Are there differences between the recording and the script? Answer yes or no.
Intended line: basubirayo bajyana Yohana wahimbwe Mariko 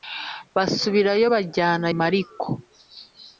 yes